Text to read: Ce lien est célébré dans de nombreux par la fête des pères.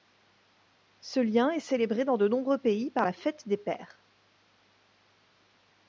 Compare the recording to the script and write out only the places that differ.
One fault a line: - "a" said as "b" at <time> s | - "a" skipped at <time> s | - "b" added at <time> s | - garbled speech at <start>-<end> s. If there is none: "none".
- "pays" added at 2.6 s